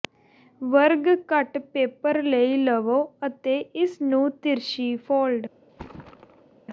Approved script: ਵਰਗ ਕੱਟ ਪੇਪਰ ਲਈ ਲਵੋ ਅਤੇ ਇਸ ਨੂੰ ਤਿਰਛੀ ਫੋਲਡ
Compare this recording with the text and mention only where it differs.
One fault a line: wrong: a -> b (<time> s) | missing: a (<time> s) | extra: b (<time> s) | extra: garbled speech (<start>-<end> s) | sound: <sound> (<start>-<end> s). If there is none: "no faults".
sound: thud (5.7-6.6 s)